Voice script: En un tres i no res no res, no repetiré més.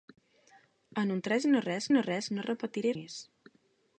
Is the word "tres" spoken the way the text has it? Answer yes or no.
yes